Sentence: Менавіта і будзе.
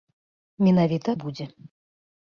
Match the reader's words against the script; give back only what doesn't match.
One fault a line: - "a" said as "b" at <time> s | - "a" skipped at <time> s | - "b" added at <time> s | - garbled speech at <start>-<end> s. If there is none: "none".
none